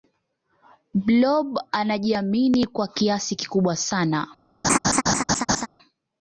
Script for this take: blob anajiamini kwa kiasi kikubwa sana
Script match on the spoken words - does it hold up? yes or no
yes